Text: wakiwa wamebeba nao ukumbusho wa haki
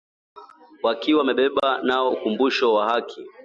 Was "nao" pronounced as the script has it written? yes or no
yes